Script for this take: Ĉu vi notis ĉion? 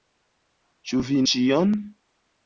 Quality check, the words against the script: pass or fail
fail